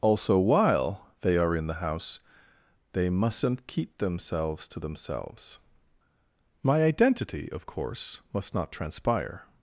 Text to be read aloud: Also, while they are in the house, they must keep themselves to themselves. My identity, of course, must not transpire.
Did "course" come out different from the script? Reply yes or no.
no